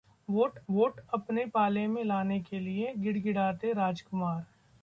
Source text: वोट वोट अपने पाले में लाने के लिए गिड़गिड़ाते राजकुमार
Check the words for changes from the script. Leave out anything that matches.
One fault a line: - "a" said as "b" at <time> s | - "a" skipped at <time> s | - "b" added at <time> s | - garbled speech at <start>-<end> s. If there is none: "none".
none